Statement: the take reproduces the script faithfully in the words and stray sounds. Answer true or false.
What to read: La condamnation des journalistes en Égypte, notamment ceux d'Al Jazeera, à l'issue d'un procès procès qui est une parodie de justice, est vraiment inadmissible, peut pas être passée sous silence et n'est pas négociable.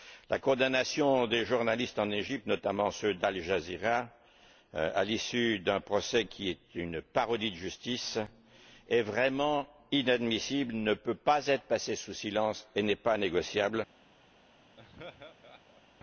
false